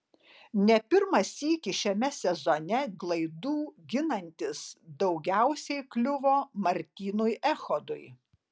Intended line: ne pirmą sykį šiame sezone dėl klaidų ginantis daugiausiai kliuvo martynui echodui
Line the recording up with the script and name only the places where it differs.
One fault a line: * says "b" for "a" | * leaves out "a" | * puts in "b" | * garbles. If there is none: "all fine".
* leaves out "dėl"